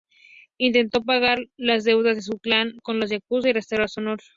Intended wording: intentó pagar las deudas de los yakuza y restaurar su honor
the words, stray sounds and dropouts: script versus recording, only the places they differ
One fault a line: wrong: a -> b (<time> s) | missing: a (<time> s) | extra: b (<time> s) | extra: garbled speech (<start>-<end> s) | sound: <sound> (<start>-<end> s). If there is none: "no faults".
extra: su clan con (2.2 s)